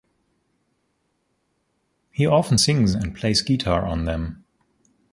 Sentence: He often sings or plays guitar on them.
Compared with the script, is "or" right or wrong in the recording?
wrong